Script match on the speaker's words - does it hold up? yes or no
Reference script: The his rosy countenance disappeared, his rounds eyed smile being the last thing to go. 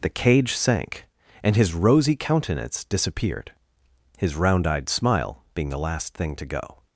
no